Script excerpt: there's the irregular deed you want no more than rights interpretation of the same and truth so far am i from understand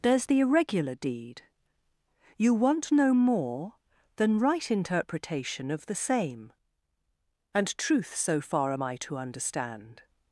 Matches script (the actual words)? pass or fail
fail